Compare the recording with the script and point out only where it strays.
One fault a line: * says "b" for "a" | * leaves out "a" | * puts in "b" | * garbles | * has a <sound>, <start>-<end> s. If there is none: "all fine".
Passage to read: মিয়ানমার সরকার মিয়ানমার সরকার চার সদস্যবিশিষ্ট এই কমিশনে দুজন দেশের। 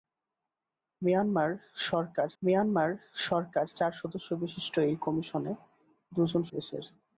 all fine